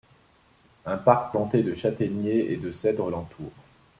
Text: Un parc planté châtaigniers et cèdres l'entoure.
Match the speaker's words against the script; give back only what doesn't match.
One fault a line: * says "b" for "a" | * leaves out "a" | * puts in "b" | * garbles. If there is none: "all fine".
* puts in "de"
* puts in "de"